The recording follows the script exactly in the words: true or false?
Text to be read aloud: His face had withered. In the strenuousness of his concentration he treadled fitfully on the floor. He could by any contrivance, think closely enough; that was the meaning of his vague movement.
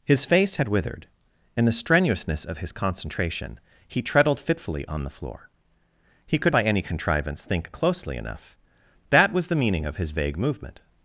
true